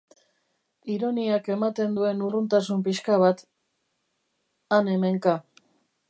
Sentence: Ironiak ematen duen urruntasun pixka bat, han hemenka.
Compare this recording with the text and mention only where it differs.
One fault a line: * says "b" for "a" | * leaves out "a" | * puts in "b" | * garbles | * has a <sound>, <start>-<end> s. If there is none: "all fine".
all fine